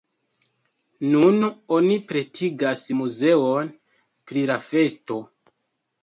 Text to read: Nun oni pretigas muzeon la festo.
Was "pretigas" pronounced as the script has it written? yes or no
yes